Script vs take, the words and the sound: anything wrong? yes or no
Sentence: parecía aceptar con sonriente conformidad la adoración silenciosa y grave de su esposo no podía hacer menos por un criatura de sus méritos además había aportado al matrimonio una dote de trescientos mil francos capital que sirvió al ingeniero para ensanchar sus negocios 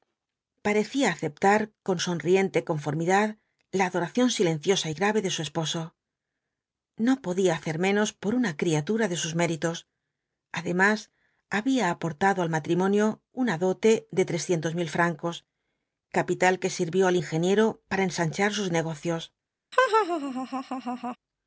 yes